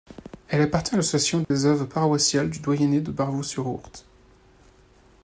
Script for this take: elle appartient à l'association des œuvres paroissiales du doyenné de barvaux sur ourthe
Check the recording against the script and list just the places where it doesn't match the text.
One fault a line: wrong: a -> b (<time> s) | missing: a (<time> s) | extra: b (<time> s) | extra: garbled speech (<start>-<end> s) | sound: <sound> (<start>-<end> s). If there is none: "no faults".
sound: dropout (1.4-1.5 s)